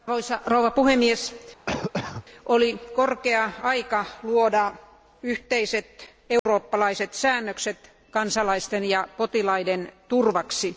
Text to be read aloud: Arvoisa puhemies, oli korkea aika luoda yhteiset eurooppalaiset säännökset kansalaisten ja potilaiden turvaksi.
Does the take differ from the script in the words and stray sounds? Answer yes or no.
yes